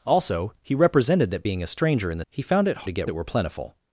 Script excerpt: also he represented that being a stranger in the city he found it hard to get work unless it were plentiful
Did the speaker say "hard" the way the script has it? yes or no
no